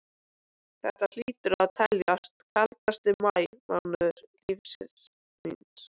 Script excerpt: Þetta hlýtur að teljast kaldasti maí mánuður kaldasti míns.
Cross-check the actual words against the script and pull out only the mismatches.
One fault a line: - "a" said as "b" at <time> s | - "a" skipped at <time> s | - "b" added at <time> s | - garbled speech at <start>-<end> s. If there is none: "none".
- "kaldasti" said as "lífs" at 4.3 s